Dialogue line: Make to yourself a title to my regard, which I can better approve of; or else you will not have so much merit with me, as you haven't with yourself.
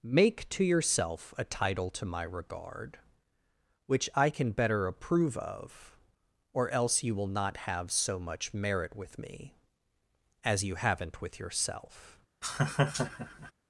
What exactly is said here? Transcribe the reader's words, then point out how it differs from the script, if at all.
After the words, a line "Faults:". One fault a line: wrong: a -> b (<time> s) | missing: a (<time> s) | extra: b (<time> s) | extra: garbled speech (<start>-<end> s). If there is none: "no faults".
Make to yourself a title to my regard, which I can better approve of; or else you will not have so much merit with me, as you haven't with yourself.
Faults:
no faults